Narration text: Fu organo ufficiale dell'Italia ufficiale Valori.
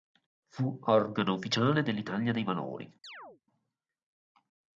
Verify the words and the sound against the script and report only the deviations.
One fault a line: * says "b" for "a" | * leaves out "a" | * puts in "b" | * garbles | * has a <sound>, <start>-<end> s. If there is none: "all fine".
* says "dei" for "ufficiale"
* has a chirp, 3.0-3.4 s